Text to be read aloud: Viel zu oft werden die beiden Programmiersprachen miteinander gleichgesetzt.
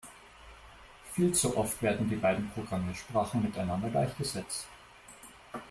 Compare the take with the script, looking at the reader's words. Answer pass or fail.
pass